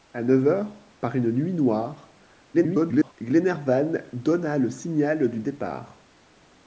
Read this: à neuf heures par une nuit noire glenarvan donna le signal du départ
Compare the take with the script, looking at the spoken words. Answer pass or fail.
fail